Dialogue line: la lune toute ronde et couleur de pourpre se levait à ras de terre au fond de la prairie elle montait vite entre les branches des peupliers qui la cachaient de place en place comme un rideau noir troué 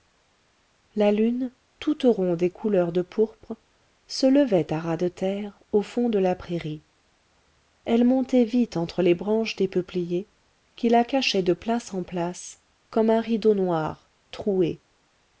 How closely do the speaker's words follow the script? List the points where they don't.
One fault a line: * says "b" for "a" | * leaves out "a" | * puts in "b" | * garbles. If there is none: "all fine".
all fine